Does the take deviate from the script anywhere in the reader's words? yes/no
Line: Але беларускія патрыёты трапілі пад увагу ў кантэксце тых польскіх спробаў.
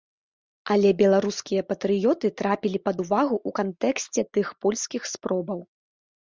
no